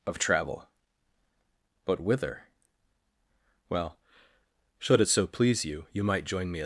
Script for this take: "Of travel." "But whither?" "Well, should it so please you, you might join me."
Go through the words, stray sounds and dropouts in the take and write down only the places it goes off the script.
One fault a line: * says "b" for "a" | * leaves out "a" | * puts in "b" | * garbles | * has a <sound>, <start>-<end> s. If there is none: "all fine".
all fine